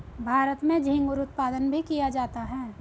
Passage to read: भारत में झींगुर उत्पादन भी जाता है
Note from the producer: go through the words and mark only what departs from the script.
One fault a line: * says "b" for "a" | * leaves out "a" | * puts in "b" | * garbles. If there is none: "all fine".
* puts in "किया"